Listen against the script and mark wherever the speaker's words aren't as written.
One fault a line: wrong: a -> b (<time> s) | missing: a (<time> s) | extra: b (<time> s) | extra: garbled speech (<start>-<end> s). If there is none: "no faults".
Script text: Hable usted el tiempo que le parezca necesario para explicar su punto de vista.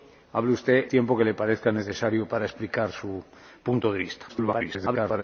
missing: el (0.9 s)
extra: garbled speech (4.3-5.2 s)